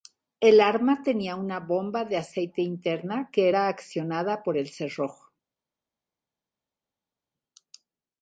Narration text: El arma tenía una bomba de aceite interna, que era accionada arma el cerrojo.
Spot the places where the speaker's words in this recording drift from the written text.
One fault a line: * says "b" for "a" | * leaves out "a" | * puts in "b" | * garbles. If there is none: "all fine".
* says "por" for "arma"